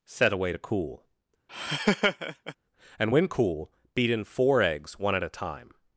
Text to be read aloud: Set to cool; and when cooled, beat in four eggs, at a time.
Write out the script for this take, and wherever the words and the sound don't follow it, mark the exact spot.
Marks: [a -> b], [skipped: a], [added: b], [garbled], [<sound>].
Set [added: away] to cool; [laugh] and when [cooled, -> cool] beat in four eggs, [added: one] at a time.